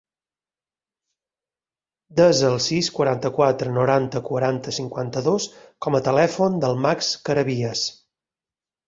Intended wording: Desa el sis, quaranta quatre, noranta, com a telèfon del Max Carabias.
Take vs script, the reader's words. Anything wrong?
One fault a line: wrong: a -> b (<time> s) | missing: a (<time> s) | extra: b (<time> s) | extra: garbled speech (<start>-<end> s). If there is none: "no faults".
extra: quaranta cinquanta dos (4.3 s)